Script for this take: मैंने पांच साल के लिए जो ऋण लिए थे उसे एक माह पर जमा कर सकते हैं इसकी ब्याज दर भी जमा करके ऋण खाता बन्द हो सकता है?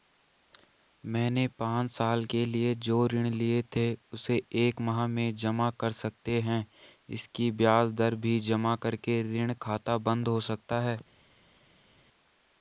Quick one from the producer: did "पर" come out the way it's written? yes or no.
no